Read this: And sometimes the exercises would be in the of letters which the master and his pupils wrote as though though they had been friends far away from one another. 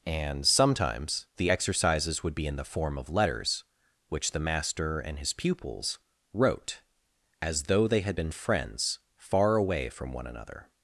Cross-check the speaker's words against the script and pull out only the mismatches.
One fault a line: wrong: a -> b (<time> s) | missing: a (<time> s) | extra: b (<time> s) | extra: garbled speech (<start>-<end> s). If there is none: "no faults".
extra: form (2.6 s)
missing: though (7.9 s)